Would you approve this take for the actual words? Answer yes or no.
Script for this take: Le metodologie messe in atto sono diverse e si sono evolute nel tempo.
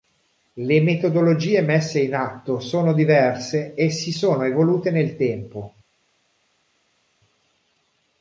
yes